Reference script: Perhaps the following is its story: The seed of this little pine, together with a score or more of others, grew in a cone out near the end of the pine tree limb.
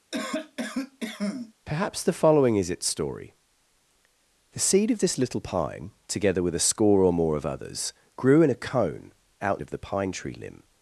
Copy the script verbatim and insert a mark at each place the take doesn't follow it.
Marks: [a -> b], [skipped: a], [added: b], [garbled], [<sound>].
[cough] Perhaps the following is its story: The seed of this little pine, together with a score or more of others, grew in a cone out [skipped: near the end] of the pine tree limb.